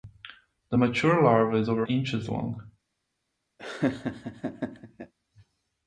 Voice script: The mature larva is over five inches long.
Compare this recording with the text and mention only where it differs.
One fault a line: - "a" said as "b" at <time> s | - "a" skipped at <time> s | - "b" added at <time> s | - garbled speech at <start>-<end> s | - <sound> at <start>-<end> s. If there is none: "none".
- "five" skipped at 1.9 s
- laugh at 3.6-5.1 s